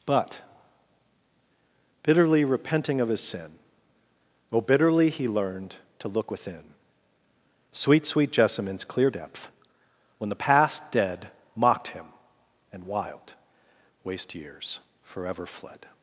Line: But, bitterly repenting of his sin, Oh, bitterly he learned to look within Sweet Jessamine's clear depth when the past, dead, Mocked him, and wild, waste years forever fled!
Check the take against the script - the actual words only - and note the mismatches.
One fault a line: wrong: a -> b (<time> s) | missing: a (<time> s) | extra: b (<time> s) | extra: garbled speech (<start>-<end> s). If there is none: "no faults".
extra: Sweet (8.1 s)